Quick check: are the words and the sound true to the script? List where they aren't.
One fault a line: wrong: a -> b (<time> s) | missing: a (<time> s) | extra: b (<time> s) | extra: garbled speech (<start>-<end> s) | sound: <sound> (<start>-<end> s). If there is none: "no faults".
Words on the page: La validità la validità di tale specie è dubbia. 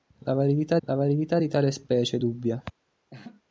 sound: laugh (3.1-3.4 s)